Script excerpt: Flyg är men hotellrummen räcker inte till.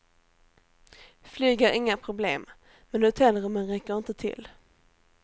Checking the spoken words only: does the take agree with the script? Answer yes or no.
no